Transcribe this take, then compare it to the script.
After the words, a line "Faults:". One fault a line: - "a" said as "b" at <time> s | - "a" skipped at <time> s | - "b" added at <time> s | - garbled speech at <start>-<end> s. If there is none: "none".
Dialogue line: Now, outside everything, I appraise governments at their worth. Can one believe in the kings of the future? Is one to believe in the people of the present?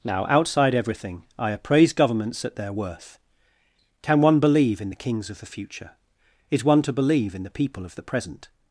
Now, outside everything, I appraise governments at their worth. Can one believe in the kings of the future? Is one to believe in the people of the present?
Faults:
none